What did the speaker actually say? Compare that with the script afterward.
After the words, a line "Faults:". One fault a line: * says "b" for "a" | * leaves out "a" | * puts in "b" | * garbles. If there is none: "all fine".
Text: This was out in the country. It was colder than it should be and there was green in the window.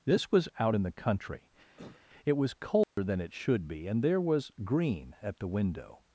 This was out in the country. It was colder than it should be and there was green at the window.
Faults:
* says "at" for "in"